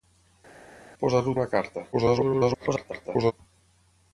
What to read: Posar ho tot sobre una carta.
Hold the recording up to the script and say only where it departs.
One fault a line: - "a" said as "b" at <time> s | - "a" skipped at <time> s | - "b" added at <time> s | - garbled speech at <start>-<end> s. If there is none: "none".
- "tot sobre" skipped at 1.3 s
- garbled speech at 1.9-3.3 s